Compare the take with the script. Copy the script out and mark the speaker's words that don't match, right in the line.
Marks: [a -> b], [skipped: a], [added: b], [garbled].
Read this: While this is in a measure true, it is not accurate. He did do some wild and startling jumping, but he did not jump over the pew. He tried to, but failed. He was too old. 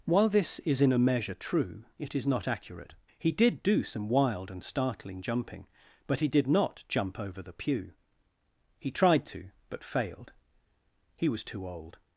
While this is in a measure true, it is not accurate. He did do some wild and startling jumping, but he did not jump over the pew. He tried to, but failed. He was too old.